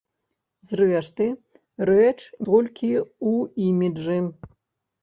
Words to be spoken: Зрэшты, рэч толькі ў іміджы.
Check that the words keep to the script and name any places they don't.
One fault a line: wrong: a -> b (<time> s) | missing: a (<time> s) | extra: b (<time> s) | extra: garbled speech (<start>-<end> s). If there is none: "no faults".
no faults